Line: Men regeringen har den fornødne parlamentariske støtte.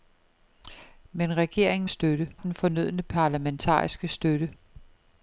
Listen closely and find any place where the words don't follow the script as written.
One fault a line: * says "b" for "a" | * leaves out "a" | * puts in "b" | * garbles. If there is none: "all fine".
* says "støtte" for "har"